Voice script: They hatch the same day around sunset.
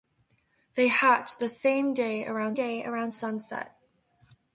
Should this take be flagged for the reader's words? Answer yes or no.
yes